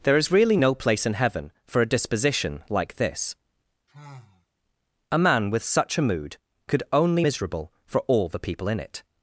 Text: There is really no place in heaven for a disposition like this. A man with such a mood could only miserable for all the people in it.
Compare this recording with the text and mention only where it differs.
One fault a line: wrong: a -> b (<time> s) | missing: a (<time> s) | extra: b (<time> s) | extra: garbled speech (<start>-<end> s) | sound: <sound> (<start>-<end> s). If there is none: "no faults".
sound: sigh (3.9-4.5 s)